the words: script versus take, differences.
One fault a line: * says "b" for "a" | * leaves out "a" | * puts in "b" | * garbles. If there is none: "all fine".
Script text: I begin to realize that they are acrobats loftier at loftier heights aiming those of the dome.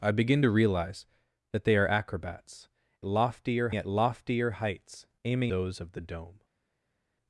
all fine